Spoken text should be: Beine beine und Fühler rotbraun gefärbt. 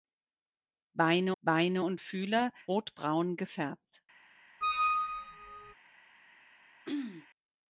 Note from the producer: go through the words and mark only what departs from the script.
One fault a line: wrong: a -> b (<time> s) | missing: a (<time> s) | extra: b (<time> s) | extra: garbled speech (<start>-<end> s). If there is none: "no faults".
no faults